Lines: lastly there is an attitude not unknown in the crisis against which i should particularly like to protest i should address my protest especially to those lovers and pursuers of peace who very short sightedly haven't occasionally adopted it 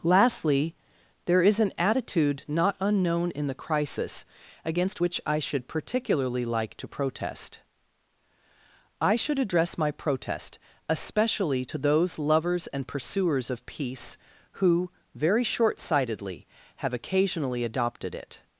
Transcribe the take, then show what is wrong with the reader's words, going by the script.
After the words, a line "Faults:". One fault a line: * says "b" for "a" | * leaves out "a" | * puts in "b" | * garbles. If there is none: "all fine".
lastly there is an attitude not unknown in the crisis against which i should particularly like to protest i should address my protest especially to those lovers and pursuers of peace who very short sightedly have occasionally adopted it
Faults:
* says "have" for "haven't"